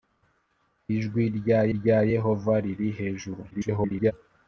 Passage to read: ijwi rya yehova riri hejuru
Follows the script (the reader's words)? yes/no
no